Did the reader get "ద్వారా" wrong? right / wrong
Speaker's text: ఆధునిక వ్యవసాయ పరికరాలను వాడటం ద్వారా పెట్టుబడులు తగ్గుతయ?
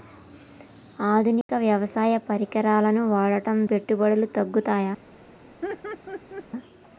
wrong